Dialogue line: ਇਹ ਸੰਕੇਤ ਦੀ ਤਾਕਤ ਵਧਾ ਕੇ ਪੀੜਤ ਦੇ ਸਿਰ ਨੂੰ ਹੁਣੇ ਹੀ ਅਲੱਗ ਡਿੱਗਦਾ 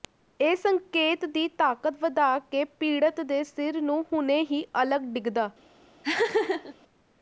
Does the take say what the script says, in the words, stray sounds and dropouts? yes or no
no